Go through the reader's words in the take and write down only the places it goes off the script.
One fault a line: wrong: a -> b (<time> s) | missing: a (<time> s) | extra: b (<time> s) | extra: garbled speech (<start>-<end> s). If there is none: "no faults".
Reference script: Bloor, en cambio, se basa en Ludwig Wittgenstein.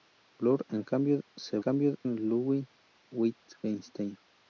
wrong: basa -> cambio (1.6 s)